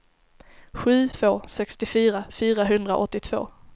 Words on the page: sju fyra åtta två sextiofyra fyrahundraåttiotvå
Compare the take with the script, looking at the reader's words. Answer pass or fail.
fail